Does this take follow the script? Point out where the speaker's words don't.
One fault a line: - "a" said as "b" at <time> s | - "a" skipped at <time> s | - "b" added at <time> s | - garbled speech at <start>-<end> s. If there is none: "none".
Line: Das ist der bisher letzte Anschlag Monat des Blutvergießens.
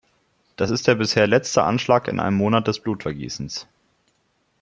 - "in einem" added at 2.1 s